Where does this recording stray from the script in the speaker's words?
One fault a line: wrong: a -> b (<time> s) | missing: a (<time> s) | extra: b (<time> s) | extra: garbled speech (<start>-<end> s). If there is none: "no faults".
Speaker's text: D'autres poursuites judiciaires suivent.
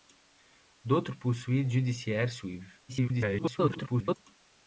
extra: garbled speech (2.9-4.2 s)